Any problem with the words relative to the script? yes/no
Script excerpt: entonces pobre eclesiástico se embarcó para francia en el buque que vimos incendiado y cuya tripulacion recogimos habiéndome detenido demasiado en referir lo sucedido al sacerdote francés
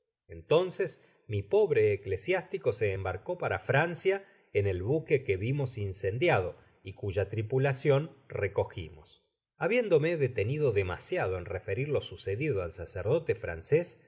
yes